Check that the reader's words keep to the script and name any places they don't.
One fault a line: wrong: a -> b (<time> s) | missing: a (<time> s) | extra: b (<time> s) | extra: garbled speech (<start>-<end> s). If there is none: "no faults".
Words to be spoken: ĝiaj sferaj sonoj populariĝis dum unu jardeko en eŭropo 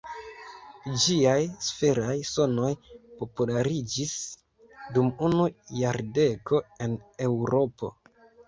no faults